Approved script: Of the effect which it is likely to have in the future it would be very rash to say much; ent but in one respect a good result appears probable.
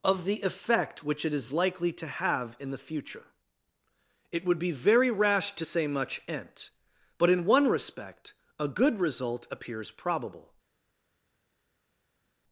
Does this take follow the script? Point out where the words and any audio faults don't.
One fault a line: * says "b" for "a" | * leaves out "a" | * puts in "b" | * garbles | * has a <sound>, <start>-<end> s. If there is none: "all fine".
all fine